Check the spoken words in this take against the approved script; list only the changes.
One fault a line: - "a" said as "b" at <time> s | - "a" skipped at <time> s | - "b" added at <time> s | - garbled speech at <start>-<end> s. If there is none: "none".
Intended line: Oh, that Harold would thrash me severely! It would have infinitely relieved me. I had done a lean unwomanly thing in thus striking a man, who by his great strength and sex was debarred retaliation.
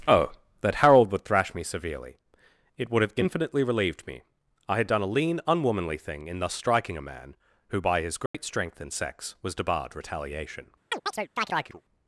none